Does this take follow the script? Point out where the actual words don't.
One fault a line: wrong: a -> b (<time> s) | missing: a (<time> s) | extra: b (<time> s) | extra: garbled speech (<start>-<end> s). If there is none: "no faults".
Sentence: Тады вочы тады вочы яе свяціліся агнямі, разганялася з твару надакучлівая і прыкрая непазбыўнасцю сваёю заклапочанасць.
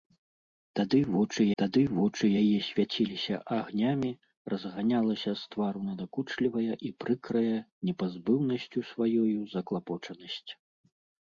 no faults